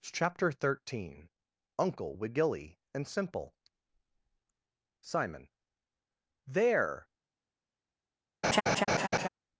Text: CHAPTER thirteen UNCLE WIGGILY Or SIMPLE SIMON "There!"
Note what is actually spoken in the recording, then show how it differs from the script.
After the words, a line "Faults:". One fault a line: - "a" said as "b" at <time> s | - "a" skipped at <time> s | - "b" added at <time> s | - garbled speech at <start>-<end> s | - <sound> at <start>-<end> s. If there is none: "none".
CHAPTER thirteen UNCLE WIGGILY AND SIMPLE SIMON "There!"
Faults:
- "Or" said as "AND" at 2.9 s
- laugh at 8.4-9.3 s